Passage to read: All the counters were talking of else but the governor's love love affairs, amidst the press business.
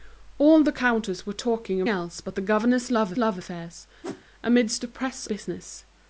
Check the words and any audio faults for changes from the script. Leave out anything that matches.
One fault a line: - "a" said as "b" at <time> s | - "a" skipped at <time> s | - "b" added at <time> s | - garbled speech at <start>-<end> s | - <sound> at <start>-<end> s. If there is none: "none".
- whoosh at 4.0-4.2 s